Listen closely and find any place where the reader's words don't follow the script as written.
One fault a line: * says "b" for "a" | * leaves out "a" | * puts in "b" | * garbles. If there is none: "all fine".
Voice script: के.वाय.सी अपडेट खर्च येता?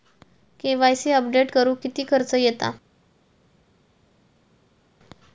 * puts in "करुक किती"